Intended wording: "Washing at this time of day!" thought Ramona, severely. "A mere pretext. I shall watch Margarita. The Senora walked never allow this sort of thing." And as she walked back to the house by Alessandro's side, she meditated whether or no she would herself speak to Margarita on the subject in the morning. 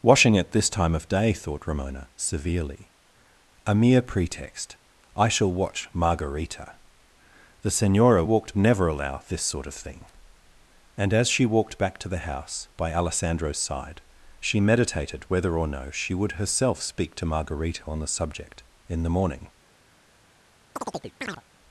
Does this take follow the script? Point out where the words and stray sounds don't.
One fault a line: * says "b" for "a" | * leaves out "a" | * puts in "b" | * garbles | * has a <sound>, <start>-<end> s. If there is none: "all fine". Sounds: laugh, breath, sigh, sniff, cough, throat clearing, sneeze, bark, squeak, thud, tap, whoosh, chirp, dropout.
* has a chirp, 20.8-21.4 s